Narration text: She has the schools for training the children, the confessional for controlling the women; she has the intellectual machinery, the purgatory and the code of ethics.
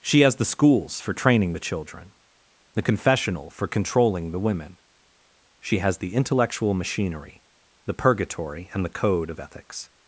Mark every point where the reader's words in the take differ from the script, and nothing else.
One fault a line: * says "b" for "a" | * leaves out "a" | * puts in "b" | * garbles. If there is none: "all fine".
all fine